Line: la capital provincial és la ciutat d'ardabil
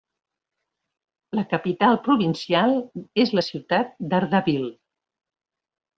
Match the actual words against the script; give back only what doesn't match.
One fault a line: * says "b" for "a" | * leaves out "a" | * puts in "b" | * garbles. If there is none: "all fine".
all fine